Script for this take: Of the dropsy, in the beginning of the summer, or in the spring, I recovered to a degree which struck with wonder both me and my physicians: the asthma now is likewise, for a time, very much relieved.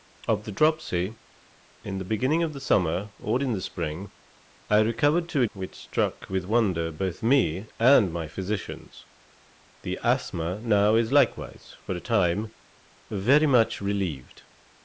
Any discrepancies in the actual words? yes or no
yes